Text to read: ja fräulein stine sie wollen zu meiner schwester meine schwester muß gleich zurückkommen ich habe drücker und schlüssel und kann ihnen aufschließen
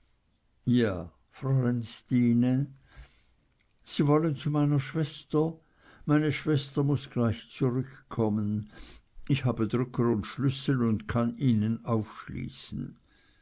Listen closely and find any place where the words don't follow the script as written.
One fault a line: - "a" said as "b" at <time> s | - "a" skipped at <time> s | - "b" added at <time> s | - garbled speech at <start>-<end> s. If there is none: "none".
none